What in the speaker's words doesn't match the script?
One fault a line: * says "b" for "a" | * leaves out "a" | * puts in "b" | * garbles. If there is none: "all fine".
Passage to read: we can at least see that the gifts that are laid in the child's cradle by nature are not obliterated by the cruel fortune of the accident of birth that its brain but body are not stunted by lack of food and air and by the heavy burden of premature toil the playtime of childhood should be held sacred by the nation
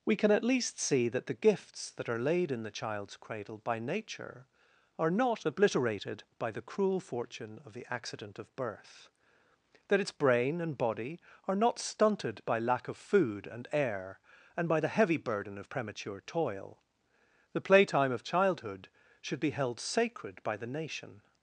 * says "and" for "but"